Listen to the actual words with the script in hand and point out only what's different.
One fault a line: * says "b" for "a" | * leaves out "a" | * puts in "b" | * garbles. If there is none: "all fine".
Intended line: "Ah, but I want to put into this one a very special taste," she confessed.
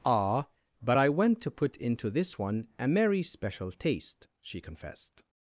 * says "went" for "want"
* says "merry" for "very"